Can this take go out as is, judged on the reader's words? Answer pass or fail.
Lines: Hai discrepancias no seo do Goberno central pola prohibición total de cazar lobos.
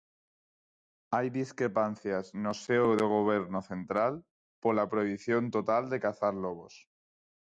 pass